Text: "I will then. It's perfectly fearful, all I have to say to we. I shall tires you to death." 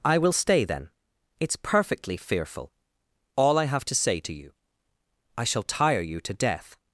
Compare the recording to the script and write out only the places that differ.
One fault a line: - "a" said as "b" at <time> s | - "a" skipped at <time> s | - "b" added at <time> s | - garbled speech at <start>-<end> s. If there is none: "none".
- "stay" added at 0.3 s
- "we" said as "you" at 4.3 s
- "tires" said as "tire" at 5.9 s